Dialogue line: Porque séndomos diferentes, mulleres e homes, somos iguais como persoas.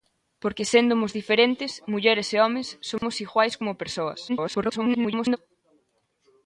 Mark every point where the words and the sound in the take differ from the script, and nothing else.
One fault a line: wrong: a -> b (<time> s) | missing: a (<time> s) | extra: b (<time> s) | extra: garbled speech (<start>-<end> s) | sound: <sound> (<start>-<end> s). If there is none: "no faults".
sound: dropout (3.0-3.0 s)
extra: garbled speech (4.3-5.4 s)